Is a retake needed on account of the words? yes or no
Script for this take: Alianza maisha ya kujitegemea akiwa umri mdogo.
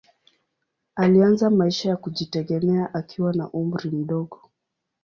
yes